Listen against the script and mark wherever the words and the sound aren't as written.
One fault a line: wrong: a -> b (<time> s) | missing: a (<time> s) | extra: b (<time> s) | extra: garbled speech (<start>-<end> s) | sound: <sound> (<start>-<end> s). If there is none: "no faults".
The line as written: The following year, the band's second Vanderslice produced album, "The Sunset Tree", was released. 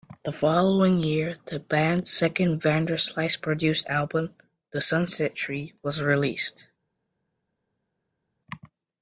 no faults